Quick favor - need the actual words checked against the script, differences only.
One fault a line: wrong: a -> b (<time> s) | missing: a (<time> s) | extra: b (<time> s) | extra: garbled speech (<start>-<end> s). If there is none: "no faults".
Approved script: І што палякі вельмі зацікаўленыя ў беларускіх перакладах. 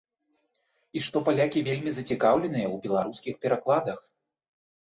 no faults